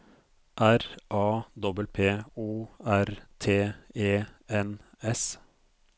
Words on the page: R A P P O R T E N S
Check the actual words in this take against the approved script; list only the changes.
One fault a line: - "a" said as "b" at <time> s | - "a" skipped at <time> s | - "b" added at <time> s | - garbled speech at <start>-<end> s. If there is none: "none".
none